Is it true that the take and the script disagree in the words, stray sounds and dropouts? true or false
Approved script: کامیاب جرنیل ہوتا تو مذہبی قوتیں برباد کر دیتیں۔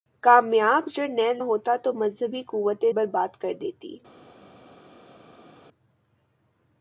false